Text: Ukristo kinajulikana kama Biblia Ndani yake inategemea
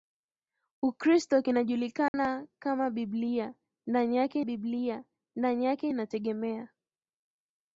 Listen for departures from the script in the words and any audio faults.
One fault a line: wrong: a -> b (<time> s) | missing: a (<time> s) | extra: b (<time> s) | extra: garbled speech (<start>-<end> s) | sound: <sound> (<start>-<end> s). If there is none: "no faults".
sound: dropout (2.1-2.1 s)
extra: Biblia Ndani yake (4.4 s)